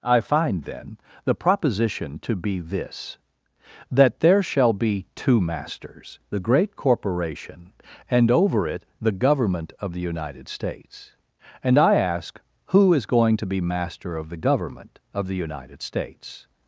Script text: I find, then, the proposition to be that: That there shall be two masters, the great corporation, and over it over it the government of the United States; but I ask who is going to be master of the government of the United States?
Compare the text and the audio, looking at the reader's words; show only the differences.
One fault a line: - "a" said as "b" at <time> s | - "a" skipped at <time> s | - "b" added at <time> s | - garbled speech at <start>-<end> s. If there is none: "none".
- "that" said as "this" at 2.6 s
- "over it" skipped at 8.8 s
- "but" said as "and" at 11.6 s